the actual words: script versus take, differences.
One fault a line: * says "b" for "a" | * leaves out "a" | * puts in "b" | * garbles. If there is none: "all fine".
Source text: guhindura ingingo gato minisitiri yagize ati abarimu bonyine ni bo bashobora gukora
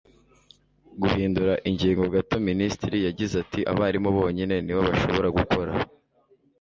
all fine